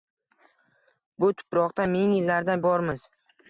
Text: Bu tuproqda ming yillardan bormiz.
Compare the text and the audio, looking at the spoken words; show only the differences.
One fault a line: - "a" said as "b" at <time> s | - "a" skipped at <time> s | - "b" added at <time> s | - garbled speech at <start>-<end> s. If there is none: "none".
none